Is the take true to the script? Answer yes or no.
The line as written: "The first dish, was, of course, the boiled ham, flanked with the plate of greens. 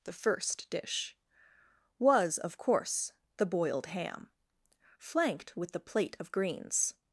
yes